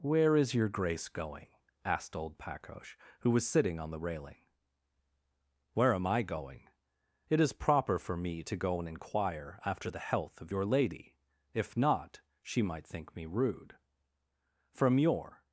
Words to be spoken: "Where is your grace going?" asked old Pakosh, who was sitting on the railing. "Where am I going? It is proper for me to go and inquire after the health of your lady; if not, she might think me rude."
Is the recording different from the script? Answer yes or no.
yes